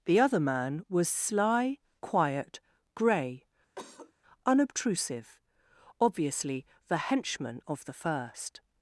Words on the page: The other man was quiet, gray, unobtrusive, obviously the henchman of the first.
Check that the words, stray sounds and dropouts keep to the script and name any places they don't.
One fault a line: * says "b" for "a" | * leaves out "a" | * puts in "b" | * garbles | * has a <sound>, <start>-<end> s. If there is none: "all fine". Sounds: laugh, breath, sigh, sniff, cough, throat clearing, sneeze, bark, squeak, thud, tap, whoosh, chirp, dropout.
* puts in "sly"
* has a cough, 3.8-4.1 s